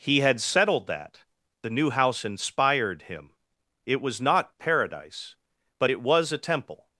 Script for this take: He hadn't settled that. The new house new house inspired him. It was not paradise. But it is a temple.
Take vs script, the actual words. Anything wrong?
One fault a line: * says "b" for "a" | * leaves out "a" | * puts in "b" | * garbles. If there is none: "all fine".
* says "had" for "hadn't"
* leaves out "new house"
* says "was" for "is"